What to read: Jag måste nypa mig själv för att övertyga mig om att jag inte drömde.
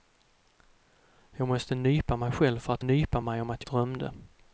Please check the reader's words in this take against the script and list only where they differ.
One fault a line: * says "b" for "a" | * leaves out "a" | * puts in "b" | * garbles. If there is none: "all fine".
* says "nypa" for "övertyga"
* leaves out "jag inte"